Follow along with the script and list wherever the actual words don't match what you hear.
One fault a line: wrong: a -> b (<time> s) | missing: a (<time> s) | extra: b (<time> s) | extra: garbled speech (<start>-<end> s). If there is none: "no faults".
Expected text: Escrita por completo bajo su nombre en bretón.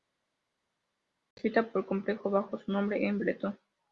no faults